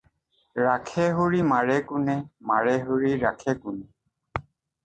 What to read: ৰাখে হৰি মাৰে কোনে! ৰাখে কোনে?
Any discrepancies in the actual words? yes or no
yes